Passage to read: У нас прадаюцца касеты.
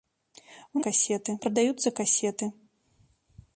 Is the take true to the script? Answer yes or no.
no